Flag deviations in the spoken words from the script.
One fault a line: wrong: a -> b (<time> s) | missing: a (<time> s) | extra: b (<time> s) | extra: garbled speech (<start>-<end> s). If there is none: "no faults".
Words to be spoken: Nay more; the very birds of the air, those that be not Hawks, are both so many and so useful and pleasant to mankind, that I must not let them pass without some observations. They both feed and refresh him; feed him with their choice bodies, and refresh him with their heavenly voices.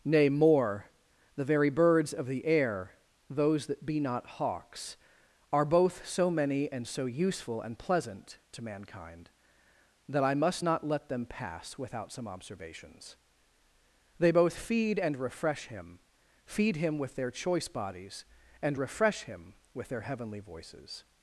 no faults